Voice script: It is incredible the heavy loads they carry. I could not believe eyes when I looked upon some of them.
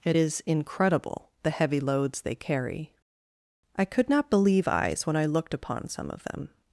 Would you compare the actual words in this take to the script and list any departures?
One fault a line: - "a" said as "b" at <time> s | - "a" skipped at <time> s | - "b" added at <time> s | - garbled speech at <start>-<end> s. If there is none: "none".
none